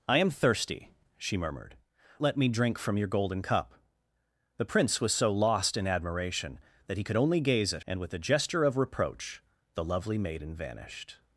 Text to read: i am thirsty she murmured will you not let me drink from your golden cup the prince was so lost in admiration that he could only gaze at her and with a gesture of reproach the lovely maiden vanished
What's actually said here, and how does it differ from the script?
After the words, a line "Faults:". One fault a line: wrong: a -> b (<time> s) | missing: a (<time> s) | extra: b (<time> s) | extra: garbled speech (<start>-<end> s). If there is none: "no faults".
i am thirsty she murmured let me drink from your golden cup the prince was so lost in admiration that he could only gaze at and with a gesture of reproach the lovely maiden vanished
Faults:
missing: will you not (1.8 s)
missing: her (7.8 s)